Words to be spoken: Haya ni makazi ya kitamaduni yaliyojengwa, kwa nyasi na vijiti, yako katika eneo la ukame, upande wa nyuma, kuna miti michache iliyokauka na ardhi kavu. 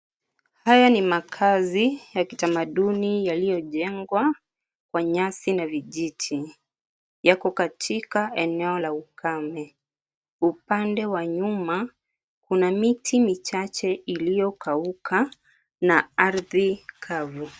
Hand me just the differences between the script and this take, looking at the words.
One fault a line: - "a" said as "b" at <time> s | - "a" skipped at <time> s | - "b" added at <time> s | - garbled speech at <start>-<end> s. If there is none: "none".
none